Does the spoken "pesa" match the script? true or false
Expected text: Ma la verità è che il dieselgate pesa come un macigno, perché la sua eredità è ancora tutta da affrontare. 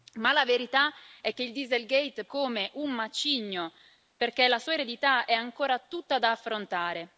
false